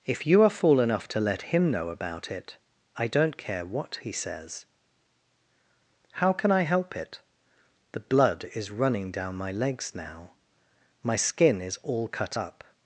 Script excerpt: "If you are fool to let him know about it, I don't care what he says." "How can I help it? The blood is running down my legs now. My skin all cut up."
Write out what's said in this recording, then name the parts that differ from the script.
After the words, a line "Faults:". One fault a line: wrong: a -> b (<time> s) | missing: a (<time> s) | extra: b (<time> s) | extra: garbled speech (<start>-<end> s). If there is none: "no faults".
"If you are fool enough to let him know about it, I don't care what he says." "How can I help it? The blood is running down my legs now. My skin is all cut up."
Faults:
extra: enough (0.8 s)
extra: is (11.6 s)